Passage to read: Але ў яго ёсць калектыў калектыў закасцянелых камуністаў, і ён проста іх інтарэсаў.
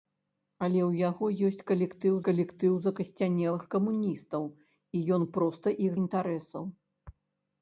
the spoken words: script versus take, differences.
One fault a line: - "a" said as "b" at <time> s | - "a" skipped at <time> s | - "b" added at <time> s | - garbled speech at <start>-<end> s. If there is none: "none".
none